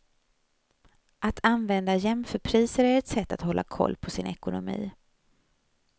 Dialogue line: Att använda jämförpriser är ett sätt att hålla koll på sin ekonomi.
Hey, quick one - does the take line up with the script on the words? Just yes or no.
yes